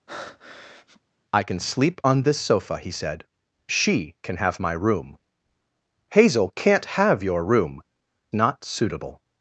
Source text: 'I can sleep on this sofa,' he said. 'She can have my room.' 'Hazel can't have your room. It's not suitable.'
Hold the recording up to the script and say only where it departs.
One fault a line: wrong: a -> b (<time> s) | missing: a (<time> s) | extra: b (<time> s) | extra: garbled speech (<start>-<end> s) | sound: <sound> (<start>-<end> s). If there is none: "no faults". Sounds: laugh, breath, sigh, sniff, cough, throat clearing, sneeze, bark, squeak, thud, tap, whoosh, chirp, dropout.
sound: breath (0.1-1.0 s)
missing: It's (7.8 s)